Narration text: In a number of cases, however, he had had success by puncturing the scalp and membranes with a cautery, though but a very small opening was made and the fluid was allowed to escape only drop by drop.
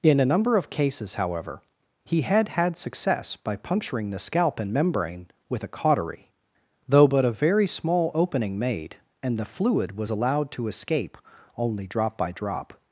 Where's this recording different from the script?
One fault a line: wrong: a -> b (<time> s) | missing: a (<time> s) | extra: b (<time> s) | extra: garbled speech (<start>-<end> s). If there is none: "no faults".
wrong: membranes -> membrane (4.7 s)
missing: was (8.6 s)